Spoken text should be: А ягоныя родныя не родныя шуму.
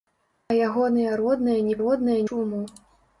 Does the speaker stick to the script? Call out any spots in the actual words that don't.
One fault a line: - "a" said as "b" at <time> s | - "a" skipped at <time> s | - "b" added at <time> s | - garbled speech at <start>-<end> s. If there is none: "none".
none